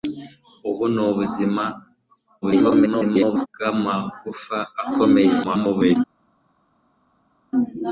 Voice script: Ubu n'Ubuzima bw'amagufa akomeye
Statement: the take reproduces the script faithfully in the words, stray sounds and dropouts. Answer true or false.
false